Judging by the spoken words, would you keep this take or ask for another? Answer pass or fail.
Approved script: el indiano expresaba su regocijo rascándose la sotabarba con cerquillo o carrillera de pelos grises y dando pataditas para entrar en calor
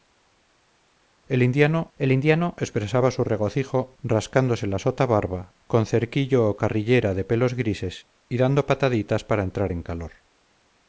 fail